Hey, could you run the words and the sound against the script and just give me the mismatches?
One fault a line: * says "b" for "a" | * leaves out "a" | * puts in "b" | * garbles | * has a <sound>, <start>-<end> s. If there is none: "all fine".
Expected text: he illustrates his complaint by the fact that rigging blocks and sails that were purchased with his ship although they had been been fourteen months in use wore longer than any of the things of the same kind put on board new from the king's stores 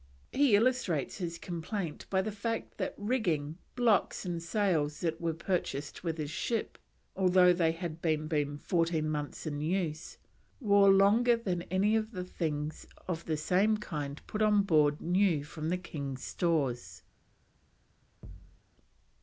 * has a thud, 18.2-18.6 s